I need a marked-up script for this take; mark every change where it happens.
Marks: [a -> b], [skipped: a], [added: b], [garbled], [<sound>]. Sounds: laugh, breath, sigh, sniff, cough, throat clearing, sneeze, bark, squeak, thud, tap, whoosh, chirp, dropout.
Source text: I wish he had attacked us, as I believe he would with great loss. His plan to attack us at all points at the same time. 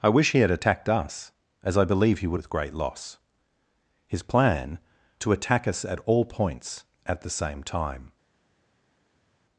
I wish he had attacked us, as I believe he would with great loss. His plan to attack us at all points at the same time.